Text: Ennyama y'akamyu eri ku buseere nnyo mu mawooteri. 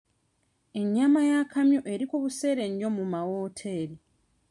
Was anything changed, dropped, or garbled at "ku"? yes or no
no